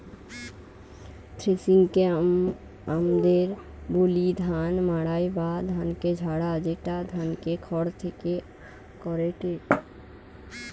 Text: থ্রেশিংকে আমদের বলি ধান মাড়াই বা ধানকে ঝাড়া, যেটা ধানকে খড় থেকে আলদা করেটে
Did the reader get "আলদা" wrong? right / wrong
wrong